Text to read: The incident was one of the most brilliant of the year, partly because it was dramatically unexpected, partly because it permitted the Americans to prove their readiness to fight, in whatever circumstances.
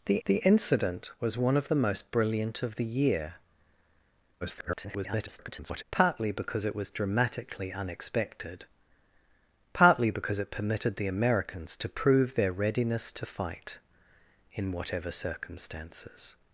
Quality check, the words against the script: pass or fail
fail